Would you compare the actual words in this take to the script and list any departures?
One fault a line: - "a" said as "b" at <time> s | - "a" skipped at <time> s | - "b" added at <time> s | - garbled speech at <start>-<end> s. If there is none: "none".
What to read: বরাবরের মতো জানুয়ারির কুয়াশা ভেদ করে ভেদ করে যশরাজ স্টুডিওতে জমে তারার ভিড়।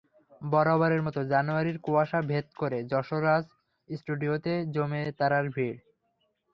- "ভেদ করে" skipped at 2.8 s